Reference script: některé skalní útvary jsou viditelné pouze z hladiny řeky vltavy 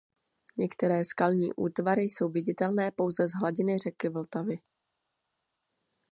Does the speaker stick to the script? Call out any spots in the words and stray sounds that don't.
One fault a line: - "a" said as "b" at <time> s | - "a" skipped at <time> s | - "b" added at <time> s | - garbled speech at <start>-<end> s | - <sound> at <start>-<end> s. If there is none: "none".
none